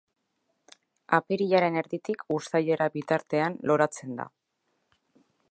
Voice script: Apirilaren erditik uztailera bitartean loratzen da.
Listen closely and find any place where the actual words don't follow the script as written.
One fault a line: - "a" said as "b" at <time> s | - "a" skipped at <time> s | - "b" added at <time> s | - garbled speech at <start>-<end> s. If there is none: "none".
none